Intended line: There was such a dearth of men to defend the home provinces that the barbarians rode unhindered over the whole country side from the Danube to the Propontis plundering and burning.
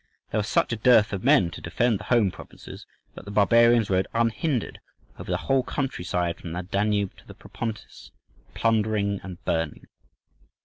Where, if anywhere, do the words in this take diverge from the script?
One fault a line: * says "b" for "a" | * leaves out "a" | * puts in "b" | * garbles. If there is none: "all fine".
all fine